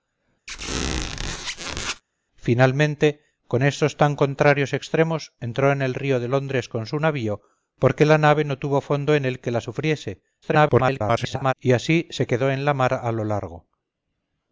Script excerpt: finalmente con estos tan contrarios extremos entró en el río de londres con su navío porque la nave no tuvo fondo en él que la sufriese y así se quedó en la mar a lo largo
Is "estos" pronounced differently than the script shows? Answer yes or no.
no